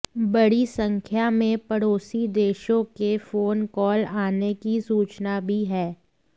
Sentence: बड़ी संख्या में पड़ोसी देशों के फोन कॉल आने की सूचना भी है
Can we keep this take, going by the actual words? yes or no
yes